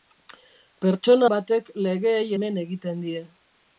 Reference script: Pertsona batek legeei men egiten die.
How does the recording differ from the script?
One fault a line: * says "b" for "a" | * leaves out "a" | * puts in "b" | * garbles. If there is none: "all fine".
all fine